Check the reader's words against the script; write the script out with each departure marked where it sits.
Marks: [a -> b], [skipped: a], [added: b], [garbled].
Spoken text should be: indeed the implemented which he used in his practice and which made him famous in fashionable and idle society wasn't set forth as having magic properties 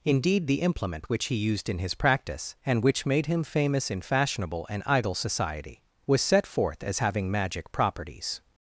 indeed the [implemented -> implement] which he used in his practice and which made him famous in fashionable and idle society [wasn't -> was] set forth as having magic properties